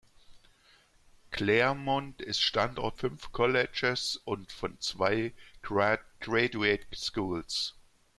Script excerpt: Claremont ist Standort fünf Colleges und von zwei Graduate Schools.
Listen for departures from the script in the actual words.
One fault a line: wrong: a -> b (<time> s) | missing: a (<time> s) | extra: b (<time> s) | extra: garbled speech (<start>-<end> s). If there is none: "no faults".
no faults